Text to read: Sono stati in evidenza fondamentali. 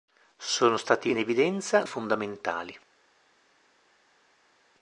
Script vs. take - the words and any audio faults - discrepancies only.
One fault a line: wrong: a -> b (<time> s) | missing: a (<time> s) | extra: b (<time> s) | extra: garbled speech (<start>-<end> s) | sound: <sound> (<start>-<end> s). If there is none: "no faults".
no faults